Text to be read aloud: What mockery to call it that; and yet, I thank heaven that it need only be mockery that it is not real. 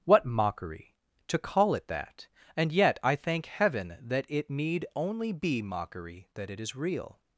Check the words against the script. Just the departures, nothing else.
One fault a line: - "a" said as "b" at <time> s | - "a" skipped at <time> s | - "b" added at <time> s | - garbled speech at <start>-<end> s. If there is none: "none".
- "not" skipped at 6.7 s